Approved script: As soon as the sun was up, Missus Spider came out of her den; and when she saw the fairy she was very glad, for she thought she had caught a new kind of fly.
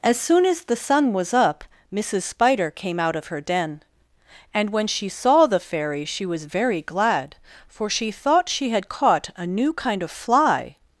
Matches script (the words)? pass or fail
pass